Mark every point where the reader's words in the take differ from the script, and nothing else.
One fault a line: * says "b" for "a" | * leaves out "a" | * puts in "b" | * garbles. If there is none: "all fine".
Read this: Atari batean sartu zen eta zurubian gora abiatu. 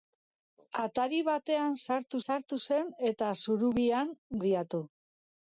* puts in "sartu"
* leaves out "gora"